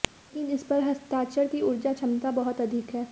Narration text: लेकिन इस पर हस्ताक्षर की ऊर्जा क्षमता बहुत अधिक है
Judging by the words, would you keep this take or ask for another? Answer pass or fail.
pass